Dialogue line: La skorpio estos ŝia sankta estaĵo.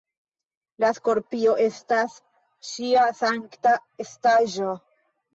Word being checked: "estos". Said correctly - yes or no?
no